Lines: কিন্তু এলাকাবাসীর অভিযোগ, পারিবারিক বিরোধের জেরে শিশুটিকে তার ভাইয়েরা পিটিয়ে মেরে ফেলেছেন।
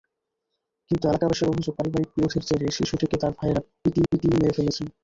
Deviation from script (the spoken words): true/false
true